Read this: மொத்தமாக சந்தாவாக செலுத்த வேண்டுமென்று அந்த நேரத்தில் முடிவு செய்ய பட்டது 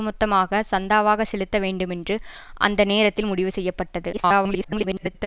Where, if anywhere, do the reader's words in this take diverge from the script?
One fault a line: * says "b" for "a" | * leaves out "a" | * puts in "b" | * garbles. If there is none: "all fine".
* garbles